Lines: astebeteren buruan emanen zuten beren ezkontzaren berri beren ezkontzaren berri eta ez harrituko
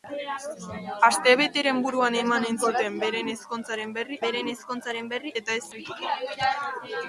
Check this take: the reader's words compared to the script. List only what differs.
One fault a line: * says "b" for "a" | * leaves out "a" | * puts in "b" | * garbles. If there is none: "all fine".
all fine